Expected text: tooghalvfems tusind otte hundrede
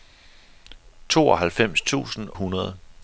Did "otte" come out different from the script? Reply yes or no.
yes